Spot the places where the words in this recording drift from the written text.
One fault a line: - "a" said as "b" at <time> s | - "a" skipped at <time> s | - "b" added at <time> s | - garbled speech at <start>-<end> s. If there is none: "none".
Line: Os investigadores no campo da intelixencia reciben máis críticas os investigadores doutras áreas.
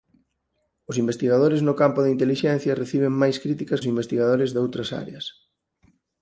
none